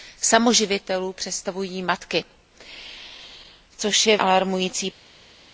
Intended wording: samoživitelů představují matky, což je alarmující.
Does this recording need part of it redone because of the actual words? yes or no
no